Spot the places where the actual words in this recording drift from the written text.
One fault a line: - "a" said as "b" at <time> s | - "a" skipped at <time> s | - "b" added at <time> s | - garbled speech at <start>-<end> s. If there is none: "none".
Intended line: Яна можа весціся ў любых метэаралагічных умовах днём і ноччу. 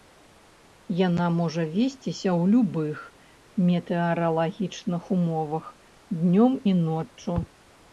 none